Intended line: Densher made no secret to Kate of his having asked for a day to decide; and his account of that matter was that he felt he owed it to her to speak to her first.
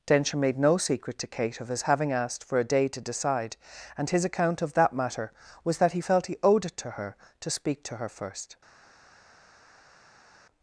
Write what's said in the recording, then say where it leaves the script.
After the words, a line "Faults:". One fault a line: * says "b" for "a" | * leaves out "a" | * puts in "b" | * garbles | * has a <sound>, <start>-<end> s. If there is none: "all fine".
Densher made no secret to Kate of his having asked for a day to decide; and his account of that matter was that he felt he owed it to her to speak to her first.
Faults:
all fine